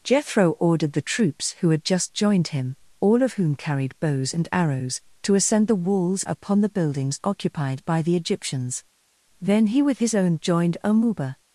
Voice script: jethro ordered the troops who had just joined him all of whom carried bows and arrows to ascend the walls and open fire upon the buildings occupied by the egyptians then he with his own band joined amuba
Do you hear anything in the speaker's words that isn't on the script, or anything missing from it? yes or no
yes